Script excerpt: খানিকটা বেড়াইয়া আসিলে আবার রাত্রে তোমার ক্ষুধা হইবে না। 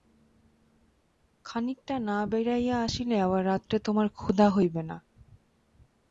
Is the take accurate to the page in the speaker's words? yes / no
no